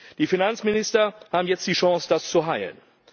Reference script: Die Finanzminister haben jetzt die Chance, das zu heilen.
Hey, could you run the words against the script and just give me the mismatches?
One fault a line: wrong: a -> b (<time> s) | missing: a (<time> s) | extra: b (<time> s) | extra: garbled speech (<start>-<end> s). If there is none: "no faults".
no faults